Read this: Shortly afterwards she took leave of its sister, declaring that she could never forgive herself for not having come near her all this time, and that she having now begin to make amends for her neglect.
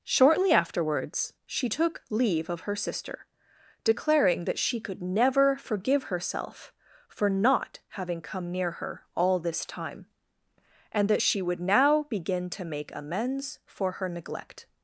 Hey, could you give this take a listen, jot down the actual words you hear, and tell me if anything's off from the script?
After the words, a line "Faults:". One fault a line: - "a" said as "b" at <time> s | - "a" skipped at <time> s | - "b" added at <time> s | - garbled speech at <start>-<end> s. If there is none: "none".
Shortly afterwards she took leave of her sister, declaring that she could never forgive herself for not having come near her all this time, and that she would now begin to make amends for her neglect.
Faults:
- "its" said as "her" at 2.6 s
- "having" said as "would" at 11.4 s